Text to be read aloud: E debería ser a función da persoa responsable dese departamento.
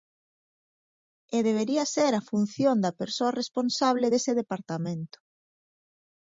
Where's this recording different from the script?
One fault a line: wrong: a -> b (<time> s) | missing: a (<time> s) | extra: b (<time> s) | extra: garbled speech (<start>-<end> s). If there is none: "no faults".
no faults